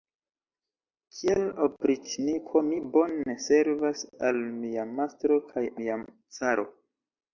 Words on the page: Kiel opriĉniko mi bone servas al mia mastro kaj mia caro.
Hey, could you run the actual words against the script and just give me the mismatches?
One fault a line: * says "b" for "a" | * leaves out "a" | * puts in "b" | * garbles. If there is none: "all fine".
all fine